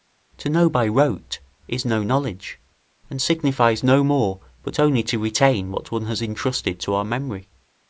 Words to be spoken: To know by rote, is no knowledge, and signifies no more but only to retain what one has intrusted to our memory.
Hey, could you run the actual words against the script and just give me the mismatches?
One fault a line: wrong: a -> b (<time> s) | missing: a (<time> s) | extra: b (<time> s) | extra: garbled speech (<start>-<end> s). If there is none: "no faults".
no faults